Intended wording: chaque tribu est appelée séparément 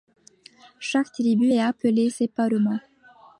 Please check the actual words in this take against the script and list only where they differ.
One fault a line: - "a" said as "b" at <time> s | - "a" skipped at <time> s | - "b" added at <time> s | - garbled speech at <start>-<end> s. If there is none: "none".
none